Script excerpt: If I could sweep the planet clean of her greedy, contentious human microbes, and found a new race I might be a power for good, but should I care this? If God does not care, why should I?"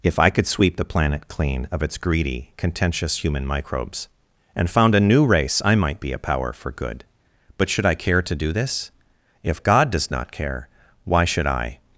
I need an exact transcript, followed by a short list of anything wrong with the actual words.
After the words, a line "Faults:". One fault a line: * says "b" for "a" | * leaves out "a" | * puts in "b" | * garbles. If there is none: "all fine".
If I could sweep the planet clean of its greedy, contentious human microbes, and found a new race I might be a power for good, but should I care to do this? If God does not care, why should I?"
Faults:
* says "its" for "her"
* puts in "to do"